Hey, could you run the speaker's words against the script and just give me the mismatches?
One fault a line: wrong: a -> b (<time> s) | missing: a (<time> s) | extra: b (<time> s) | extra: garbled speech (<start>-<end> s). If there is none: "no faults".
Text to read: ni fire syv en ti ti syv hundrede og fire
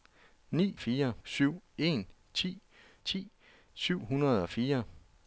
no faults